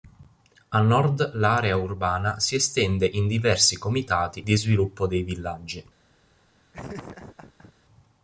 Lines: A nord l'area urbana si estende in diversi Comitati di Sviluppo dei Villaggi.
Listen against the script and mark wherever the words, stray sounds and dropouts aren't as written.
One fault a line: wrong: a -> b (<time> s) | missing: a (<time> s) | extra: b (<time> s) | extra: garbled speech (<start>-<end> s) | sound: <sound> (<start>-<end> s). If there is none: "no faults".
sound: laugh (6.7-7.7 s)